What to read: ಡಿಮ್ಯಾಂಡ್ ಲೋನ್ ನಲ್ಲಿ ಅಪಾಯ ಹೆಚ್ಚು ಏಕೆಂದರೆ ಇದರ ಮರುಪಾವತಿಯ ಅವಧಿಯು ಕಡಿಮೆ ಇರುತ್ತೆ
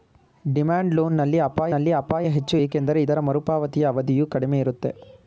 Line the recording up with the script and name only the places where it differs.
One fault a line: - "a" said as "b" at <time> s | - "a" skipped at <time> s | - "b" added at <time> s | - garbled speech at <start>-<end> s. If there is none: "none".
- "ನಲ್ಲಿ ಅಪಾಯ" added at 1.7 s